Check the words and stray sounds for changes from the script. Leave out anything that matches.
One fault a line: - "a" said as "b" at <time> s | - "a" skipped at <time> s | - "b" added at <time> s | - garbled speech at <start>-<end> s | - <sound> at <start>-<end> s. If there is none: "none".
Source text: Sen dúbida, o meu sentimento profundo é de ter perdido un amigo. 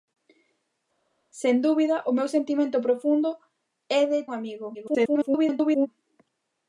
- "ter perdido" skipped at 4.2 s
- garbled speech at 4.7-5.9 s